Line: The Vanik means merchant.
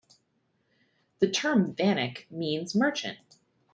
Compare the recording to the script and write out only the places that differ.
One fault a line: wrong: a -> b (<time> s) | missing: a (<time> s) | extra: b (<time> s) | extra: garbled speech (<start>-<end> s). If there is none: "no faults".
extra: term (1.3 s)